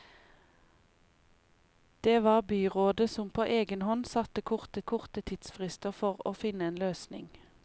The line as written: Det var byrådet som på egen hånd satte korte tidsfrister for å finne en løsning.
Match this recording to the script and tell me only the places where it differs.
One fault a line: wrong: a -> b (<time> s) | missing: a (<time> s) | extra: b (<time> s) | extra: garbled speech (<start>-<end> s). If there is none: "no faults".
extra: korte (4.8 s)